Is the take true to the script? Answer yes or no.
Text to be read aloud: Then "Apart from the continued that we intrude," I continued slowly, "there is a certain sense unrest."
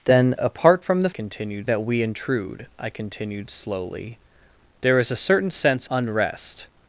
yes